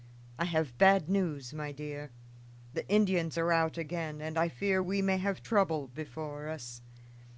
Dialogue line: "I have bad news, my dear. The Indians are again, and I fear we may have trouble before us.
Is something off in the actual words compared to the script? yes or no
yes